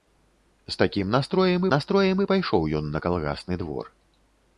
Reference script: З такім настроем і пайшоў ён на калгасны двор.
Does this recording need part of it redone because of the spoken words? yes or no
yes